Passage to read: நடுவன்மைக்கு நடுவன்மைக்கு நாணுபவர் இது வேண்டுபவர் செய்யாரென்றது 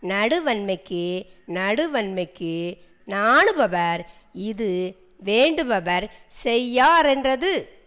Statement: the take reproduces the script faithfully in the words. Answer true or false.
true